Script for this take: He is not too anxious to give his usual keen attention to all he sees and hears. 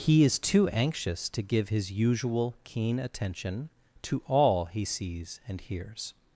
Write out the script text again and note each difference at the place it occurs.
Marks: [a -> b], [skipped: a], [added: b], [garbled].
He is [skipped: not] too anxious to give his usual keen attention to all he sees and hears.